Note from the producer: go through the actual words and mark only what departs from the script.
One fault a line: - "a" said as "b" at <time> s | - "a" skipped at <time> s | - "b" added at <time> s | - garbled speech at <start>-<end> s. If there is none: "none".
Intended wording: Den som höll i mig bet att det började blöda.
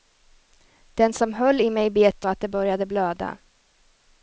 none